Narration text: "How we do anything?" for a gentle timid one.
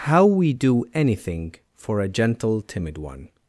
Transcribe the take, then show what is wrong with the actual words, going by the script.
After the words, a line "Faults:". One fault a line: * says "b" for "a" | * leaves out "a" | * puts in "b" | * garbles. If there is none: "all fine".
"How we do anything?" for a gentle timid one.
Faults:
all fine